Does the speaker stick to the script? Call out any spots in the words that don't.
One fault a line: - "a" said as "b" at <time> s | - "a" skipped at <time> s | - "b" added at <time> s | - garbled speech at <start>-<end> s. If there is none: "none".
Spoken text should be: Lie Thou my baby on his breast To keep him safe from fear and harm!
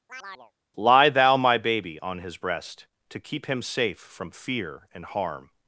none